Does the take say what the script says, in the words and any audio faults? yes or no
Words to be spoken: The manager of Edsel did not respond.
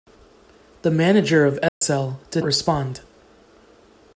no